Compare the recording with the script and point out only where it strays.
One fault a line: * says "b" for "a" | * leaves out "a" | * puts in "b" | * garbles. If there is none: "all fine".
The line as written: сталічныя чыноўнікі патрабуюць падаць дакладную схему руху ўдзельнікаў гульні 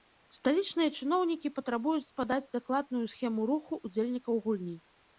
all fine